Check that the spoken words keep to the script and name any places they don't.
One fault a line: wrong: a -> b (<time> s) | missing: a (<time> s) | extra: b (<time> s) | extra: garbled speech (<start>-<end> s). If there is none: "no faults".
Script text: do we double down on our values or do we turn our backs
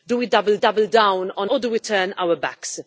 extra: double (0.6 s)
missing: our values (1.5 s)